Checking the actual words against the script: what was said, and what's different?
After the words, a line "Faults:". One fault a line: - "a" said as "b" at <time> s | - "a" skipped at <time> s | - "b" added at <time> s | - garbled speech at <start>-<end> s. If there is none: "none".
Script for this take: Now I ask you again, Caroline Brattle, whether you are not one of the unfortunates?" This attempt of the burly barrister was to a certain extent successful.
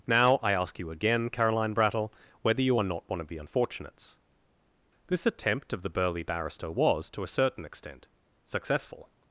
Now I ask you again, Caroline Brattle, whether you are not one of the unfortunates?" This attempt of the burly barrister was to a certain extent successful.
Faults:
none